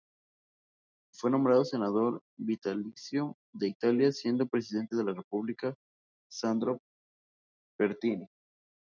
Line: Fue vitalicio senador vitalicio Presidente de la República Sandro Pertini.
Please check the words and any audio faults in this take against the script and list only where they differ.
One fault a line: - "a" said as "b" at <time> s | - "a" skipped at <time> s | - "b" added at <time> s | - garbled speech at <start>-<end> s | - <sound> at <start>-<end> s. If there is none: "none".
- "vitalicio" said as "nombrado" at 1.3 s
- "de Italia siendo" added at 3.5 s